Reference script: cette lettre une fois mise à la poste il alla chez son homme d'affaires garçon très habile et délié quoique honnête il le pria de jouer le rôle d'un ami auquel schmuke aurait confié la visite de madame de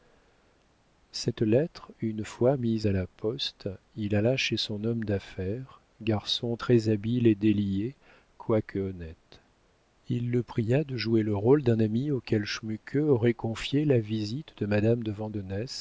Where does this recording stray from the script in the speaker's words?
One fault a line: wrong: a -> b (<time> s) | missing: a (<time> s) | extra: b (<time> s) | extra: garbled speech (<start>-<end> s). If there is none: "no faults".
no faults